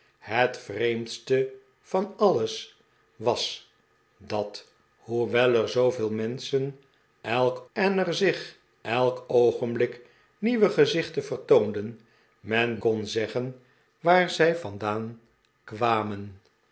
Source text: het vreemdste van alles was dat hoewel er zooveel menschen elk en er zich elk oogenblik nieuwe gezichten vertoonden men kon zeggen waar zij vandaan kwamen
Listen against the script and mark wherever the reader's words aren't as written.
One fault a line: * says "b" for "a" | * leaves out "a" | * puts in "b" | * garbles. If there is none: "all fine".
all fine